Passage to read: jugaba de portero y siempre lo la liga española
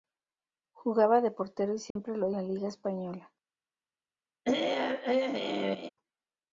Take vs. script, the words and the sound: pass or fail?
fail